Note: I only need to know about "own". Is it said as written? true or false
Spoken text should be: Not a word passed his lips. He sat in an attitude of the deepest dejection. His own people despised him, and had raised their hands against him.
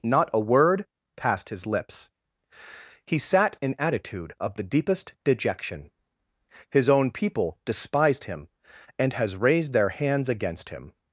true